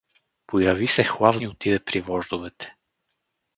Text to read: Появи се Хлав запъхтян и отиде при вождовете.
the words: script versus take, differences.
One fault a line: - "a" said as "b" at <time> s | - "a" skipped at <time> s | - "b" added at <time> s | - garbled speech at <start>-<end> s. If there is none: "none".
- "запъхтян" skipped at 1.4 s